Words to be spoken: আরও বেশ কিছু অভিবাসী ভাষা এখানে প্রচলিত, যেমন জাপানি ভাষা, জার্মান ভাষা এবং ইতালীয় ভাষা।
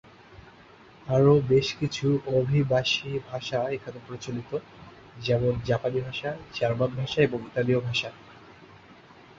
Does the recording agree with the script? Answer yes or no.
yes